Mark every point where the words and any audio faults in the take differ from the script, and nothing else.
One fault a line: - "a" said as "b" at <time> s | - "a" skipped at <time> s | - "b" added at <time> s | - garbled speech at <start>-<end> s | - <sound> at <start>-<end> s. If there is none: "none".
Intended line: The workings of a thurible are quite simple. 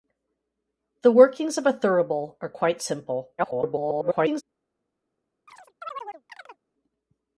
- garbled speech at 3.4-4.4 s
- chirp at 5.5-6.6 s